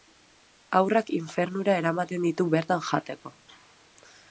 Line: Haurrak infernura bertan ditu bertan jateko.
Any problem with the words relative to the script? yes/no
yes